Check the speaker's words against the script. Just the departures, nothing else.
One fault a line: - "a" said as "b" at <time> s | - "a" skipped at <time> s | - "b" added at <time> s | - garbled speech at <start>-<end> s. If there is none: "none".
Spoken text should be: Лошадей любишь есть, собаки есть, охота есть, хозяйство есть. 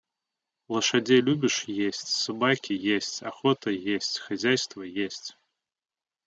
none